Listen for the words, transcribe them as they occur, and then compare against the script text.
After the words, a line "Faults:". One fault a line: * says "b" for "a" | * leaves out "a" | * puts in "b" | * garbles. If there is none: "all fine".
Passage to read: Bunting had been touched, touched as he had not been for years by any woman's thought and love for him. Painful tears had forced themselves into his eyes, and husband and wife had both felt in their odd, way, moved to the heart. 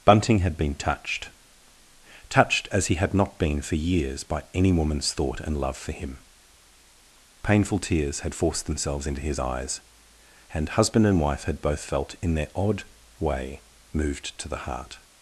Bunting had been touched, touched as he had not been for years by any woman's thought and love for him. Painful tears had forced themselves into his eyes, and husband and wife had both felt in their odd, way, moved to the heart.
Faults:
all fine